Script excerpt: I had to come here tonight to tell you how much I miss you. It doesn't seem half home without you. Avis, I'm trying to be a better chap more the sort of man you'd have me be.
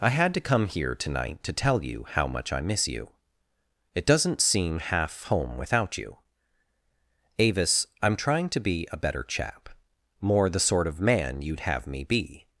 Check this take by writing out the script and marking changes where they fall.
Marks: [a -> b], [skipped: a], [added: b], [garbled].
I had to come here tonight to tell you how much I miss you. It doesn't seem half home without you. Avis, I'm trying to be a better chap more the sort of man you'd have me be.